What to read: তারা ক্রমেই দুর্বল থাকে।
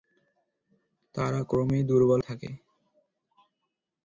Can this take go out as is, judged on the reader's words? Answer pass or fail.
pass